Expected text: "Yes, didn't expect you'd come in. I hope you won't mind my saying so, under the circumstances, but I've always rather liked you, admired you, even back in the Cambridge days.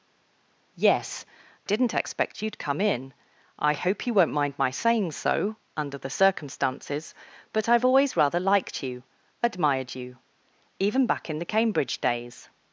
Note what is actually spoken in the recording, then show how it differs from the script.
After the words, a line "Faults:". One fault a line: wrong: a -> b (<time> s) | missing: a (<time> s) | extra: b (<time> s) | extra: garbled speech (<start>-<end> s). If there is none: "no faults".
"Yes, didn't expect you'd come in. I hope you won't mind my saying so, under the circumstances, but I've always rather liked you, admired you, even back in the Cambridge days.
Faults:
no faults